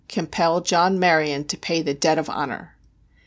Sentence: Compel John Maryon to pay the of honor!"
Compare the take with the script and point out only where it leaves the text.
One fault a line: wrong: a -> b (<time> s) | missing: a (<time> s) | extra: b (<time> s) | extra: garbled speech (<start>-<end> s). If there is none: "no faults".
extra: debt (1.9 s)